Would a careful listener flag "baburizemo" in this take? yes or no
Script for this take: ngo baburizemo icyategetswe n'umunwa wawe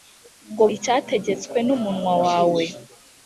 yes